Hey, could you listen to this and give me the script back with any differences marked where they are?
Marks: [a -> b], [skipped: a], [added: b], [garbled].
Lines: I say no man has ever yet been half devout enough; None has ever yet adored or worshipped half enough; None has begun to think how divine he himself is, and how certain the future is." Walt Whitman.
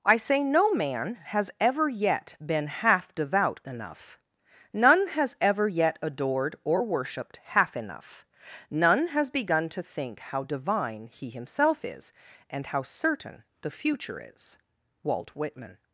I say no man has ever yet been half devout enough; None has ever yet adored or worshipped half enough; None has begun to think how divine he himself is, and how certain the future is." Walt Whitman.